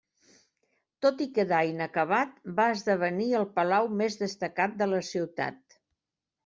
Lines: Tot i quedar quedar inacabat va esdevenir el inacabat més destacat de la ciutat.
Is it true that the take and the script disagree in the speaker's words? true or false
true